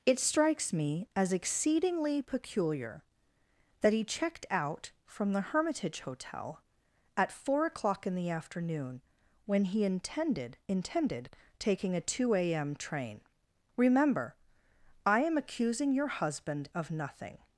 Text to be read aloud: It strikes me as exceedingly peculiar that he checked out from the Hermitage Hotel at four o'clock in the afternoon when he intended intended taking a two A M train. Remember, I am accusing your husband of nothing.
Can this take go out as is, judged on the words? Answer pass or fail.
pass